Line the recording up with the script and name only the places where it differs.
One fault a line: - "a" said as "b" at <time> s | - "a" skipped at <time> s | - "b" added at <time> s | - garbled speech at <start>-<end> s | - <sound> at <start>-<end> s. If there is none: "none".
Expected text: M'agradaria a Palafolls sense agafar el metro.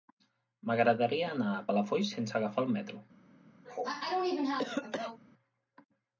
- "anar" added at 1.3 s
- cough at 3.6-5.2 s